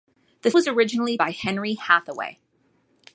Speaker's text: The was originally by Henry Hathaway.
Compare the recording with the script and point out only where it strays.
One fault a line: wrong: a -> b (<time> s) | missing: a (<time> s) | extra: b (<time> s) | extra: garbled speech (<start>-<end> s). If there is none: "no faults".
no faults